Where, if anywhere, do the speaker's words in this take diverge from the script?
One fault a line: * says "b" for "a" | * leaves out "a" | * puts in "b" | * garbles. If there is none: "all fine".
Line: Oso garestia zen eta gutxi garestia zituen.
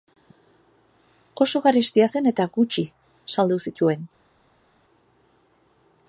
* says "saldu" for "garestia"